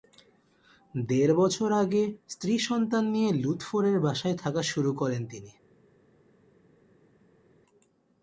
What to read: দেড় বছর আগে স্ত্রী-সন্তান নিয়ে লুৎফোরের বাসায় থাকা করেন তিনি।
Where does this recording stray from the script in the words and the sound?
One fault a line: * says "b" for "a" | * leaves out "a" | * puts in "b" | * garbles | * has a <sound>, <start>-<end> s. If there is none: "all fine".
* puts in "শুরু"